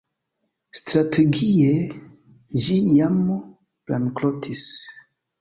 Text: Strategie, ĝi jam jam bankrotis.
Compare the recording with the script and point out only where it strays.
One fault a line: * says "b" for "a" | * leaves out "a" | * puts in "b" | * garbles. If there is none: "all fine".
* leaves out "jam"